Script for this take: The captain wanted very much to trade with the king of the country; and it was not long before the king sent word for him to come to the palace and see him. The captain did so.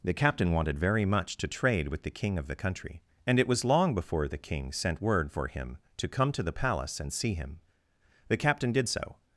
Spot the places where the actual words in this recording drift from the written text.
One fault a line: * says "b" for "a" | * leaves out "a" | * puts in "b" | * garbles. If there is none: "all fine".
* leaves out "not"